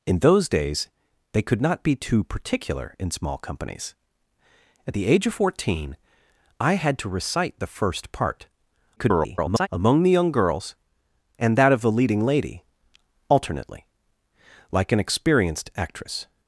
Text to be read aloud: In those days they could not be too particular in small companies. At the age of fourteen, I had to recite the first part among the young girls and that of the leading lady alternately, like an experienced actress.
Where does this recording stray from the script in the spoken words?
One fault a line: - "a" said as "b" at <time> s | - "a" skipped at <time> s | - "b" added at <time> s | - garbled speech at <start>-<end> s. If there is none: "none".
- garbled speech at 9.0-9.7 s